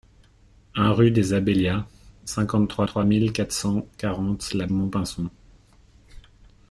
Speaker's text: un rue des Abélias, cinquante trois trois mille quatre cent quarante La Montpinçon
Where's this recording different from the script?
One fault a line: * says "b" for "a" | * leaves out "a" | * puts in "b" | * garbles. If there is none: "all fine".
all fine